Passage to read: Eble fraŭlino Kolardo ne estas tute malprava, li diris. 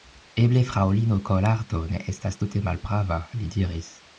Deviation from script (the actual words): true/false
false